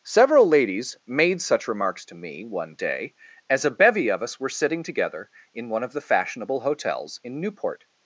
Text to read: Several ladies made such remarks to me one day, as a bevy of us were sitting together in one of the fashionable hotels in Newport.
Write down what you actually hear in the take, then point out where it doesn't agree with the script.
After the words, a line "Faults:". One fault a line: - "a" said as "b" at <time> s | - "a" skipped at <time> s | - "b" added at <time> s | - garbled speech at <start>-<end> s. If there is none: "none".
Several ladies made such remarks to me one day, as a bevy of us were sitting together in one of the fashionable hotels in Newport.
Faults:
none